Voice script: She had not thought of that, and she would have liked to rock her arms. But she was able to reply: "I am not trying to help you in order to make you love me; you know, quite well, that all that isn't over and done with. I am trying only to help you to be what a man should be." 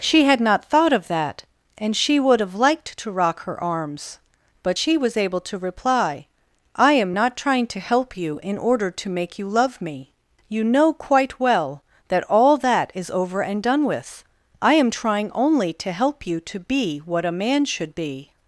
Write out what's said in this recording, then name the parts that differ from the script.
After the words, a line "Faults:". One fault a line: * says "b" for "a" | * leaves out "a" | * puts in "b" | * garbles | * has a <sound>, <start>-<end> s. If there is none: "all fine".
She had not thought of that, and she would have liked to rock her arms. But she was able to reply: "I am not trying to help you in order to make you love me; you know, quite well, that all that is over and done with. I am trying only to help you to be what a man should be."
Faults:
* says "is" for "isn't"